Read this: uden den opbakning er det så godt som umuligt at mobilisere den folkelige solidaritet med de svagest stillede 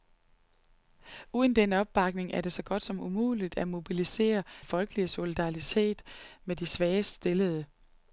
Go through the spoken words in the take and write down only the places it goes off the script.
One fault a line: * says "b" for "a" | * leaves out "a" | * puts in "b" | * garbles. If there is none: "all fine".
* leaves out "den"